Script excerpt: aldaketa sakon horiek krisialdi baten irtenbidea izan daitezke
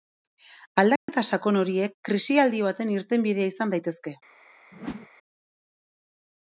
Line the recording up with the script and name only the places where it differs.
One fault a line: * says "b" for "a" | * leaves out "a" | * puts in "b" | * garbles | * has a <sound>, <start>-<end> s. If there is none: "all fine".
* has a dropout, 1.0-1.1 s
* has a whoosh, 4.7-5.1 s